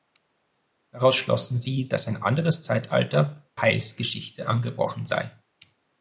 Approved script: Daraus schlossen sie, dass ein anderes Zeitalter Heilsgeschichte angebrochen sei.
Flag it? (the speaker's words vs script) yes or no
no